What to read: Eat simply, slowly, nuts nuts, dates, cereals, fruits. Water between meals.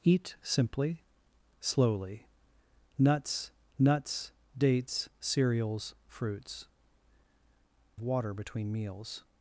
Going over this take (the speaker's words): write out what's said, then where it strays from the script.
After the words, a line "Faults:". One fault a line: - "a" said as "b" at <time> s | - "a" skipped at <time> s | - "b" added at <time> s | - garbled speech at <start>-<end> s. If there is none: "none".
Eat simply, slowly, nuts nuts, dates, cereals, fruits. Water between meals.
Faults:
none